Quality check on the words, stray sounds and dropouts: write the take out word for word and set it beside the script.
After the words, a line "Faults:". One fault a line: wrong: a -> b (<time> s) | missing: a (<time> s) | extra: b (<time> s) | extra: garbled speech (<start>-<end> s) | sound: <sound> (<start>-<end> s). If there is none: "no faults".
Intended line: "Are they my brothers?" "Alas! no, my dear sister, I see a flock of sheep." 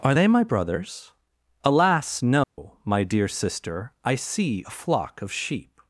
"Are they my brothers?" "Alas! no, my dear sister, I see a flock of sheep."
Faults:
sound: dropout (2.4-2.6 s)